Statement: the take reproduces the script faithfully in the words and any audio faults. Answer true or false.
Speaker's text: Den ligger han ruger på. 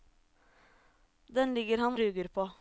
true